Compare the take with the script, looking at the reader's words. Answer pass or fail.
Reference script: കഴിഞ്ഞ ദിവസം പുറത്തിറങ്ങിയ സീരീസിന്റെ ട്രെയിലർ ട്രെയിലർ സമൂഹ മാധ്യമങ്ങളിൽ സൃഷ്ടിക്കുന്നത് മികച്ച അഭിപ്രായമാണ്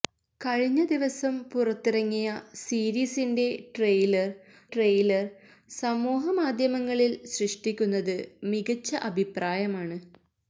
pass